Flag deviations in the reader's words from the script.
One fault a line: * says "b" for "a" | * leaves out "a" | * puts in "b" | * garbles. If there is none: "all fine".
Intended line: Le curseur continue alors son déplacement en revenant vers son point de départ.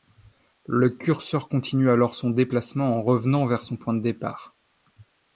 all fine